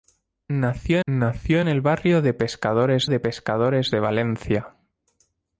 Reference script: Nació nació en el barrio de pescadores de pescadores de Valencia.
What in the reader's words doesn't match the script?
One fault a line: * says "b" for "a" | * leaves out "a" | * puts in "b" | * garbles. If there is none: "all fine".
all fine